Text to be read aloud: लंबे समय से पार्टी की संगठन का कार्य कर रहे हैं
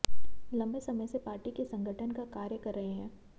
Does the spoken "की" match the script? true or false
false